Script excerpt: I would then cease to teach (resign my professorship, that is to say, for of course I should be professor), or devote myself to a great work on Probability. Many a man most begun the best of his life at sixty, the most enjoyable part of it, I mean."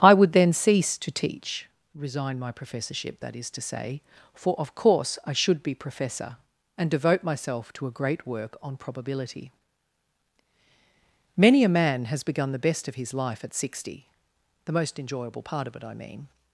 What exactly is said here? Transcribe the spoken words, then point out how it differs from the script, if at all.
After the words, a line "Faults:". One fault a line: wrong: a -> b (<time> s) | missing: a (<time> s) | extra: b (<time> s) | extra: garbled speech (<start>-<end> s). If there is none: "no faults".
I would then cease to teach (resign my professorship, that is to say, for of course I should be professor), and devote myself to a great work on Probability. Many a man has begun the best of his life at sixty, the most enjoyable part of it, I mean."
Faults:
wrong: or -> and (6.8 s)
wrong: most -> has (12.1 s)